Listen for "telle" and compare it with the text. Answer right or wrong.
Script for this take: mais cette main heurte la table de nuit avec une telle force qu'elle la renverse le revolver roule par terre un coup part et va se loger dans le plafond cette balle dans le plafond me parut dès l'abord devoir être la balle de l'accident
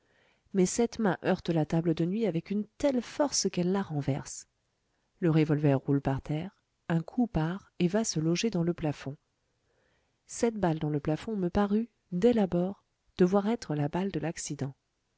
right